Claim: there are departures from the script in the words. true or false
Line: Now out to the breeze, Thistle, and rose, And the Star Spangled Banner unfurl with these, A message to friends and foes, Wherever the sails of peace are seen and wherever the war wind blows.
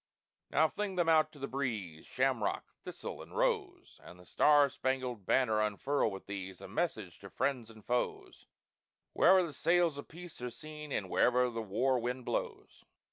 true